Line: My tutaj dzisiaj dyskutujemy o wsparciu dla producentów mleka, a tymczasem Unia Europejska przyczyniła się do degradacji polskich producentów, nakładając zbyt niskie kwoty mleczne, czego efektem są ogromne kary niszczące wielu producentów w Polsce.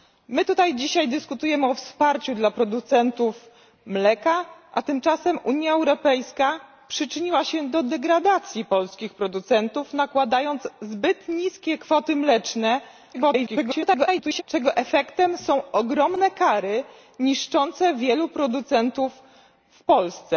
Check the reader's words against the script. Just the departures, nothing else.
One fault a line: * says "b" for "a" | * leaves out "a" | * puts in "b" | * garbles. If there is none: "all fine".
* garbles